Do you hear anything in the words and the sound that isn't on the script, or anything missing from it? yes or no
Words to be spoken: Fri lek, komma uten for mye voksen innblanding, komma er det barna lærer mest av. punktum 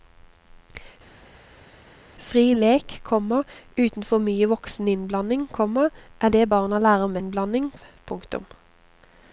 yes